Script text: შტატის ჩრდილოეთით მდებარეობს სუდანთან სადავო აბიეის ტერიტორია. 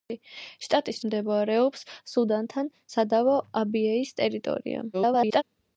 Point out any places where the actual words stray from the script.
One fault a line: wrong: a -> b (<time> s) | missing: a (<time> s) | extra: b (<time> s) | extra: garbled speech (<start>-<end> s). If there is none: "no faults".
missing: ჩრდილოეთით (1.0 s)
extra: garbled speech (4.9-5.4 s)